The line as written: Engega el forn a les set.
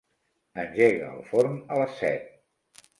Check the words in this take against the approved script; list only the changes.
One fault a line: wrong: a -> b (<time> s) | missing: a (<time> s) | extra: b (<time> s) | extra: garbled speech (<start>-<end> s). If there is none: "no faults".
no faults